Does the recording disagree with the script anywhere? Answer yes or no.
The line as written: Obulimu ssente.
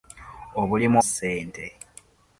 no